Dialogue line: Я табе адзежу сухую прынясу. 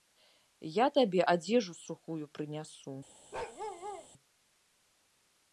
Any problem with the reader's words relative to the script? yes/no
no